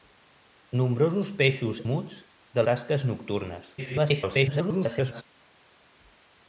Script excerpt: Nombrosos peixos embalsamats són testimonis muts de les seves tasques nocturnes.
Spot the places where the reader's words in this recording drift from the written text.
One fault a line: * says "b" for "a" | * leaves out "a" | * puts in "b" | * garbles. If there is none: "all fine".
* leaves out "embalsamats són testimonis"
* leaves out "les seves"
* garbles